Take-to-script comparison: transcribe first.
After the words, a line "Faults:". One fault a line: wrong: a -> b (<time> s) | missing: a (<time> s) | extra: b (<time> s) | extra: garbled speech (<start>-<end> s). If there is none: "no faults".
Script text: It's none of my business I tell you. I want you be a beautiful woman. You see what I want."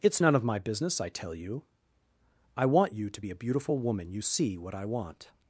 It's none of my business I tell you. I want you to be a beautiful woman. You see what I want."
Faults:
extra: to (3.1 s)